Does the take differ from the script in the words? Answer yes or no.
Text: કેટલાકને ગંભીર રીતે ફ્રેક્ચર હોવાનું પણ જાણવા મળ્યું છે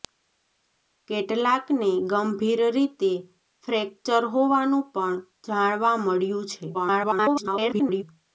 yes